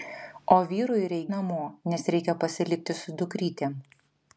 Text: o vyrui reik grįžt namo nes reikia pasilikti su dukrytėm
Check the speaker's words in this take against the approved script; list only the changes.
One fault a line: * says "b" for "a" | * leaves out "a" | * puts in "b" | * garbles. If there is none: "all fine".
* leaves out "grįžt"